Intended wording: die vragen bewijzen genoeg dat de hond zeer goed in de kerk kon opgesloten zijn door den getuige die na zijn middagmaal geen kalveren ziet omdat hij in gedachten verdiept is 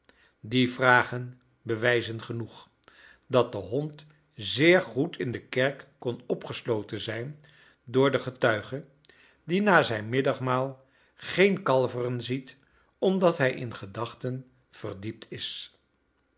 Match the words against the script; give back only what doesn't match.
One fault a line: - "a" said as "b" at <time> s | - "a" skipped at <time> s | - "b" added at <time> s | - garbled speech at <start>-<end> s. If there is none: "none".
none